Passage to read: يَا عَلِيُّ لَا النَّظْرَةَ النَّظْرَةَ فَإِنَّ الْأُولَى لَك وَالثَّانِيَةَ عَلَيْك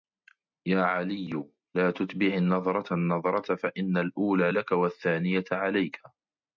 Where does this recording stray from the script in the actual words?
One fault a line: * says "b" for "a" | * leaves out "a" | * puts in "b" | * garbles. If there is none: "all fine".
* puts in "تُتْبِعْ"